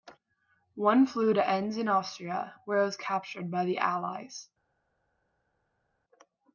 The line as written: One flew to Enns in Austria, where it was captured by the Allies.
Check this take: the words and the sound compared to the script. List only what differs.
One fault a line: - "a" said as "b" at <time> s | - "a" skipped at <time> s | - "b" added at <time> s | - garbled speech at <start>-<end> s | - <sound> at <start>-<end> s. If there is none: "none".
none